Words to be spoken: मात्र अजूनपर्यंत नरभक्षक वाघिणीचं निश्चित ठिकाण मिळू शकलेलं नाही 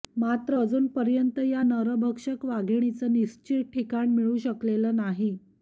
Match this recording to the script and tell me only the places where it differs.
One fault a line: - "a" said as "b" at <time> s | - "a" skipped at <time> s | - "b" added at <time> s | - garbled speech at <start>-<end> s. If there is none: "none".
- "या" added at 1.4 s